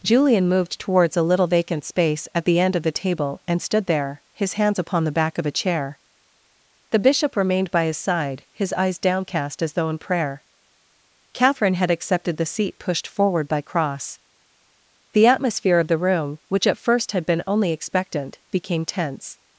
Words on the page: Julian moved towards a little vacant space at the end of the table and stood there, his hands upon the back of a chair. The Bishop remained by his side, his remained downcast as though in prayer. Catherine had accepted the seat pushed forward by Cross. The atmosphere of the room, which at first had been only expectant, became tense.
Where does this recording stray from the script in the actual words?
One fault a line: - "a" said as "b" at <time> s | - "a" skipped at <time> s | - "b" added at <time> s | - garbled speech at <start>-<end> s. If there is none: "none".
- "remained" said as "eyes" at 8.7 s